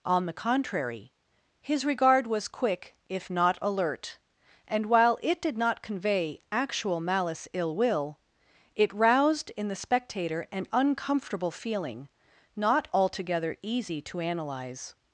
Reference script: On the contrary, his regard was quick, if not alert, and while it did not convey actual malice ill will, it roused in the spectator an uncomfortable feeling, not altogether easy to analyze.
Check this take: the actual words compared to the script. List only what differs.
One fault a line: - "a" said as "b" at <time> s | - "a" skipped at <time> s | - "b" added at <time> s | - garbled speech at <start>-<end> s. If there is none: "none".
none